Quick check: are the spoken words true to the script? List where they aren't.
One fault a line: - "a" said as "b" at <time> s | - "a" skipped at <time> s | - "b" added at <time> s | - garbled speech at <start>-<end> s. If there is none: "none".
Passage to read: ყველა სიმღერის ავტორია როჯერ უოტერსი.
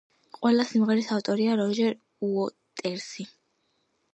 none